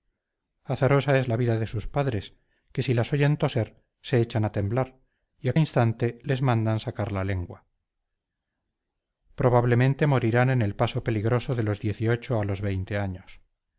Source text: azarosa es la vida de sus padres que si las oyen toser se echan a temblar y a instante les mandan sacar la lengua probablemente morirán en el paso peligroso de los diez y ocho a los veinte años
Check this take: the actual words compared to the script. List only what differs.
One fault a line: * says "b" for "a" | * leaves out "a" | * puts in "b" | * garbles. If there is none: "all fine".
all fine